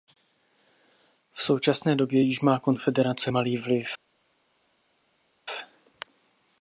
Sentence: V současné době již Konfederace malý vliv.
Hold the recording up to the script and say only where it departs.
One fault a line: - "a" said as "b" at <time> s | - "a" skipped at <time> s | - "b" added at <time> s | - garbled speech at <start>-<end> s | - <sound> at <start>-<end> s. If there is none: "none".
- "má" added at 2.4 s